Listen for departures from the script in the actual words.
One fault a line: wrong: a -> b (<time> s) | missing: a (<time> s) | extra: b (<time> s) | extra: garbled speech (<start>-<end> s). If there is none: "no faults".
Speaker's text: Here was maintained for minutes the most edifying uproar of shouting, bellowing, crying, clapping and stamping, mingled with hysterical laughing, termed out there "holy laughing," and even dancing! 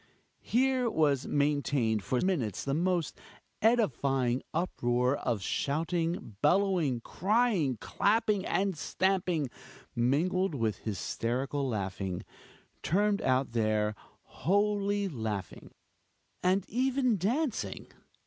no faults